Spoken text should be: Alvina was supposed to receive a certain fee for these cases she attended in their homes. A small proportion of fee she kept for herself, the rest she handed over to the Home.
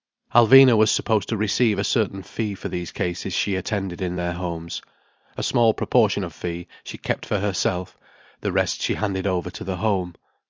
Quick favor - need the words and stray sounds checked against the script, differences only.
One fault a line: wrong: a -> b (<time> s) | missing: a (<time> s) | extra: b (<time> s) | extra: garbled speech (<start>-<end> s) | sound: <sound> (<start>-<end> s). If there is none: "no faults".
no faults